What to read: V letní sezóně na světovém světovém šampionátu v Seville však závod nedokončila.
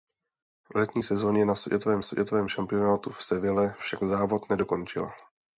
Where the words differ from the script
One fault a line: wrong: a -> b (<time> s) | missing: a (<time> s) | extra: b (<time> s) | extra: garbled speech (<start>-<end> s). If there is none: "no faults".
no faults